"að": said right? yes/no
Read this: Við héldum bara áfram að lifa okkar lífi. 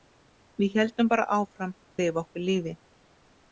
no